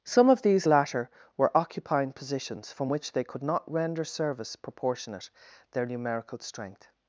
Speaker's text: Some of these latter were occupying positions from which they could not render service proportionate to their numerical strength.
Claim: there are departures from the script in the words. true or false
true